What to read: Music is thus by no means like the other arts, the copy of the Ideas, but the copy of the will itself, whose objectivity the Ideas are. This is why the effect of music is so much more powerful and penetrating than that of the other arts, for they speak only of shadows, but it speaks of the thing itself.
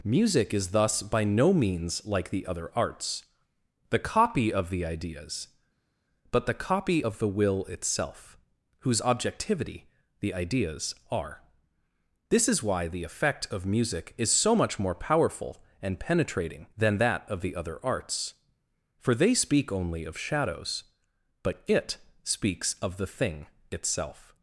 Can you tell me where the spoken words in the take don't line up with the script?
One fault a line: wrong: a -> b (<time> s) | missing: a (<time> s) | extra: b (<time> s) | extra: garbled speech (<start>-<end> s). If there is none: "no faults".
no faults